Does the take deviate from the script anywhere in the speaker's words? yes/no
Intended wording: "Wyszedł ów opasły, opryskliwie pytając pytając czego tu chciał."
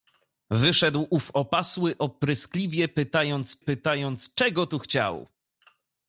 no